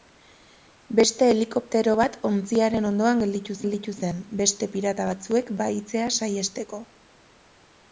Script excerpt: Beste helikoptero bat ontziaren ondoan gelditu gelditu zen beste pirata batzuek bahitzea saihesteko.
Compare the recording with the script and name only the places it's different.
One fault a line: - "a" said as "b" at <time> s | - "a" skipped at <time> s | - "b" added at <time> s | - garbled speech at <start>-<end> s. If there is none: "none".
none